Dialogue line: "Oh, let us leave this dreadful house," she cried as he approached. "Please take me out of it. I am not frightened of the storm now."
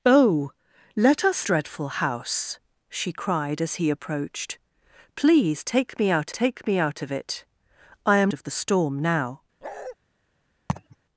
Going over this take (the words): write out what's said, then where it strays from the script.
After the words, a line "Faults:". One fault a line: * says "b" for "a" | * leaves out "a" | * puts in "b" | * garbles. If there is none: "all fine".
"Oh, let us dreadful house," she cried as he approached. "Please take me out take me out of it. I am of the storm now."
Faults:
* leaves out "leave this"
* puts in "take me out"
* leaves out "not frightened"